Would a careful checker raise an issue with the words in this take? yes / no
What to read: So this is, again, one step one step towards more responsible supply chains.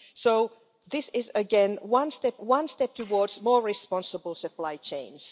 no